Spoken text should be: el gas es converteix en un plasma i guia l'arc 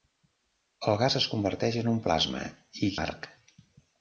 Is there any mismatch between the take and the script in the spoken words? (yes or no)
yes